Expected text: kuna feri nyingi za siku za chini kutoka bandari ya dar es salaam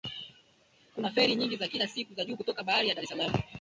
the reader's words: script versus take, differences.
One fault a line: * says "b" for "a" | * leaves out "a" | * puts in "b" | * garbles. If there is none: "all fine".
* puts in "kila"
* says "juu" for "chini"